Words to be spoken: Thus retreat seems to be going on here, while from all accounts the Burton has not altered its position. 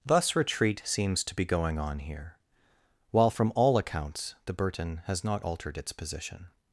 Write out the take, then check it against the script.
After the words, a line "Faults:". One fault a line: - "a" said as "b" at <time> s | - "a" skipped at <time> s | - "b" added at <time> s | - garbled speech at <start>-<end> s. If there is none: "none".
Thus retreat seems to be going on here, while from all accounts the Burton has not altered its position.
Faults:
none